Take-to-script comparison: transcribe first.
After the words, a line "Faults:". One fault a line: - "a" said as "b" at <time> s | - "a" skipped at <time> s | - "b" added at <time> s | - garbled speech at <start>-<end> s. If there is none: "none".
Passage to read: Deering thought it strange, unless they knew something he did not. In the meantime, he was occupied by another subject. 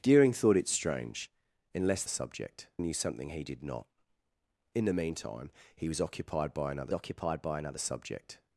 Deering thought it strange, unless subject knew something he did not. In the meantime, he was occupied by another occupied by another subject.
Faults:
- "they" said as "subject" at 2.1 s
- "occupied by another" added at 6.9 s